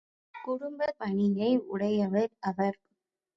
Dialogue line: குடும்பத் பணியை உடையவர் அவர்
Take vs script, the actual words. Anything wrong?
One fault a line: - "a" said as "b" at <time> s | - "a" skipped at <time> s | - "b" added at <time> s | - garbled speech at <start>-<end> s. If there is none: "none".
none